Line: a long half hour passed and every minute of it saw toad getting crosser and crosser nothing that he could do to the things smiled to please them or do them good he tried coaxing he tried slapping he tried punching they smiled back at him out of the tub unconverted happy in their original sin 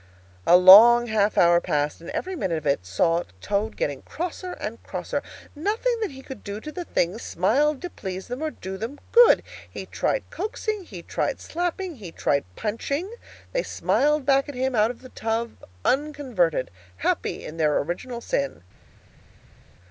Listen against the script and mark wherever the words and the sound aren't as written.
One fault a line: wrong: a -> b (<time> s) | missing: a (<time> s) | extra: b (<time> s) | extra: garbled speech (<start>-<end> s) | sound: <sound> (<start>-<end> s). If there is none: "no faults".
no faults